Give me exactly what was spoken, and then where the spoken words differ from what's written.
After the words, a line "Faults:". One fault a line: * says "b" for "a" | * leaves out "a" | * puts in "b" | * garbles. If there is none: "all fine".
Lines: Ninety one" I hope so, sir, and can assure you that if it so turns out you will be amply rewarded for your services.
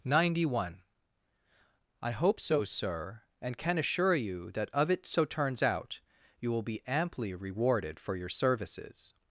Ninety one" I hope so, sir, and can assure you that of it so turns out you will be amply rewarded for your services.
Faults:
* says "of" for "if"